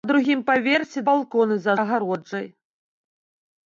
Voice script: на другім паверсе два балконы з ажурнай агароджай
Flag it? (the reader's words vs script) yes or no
yes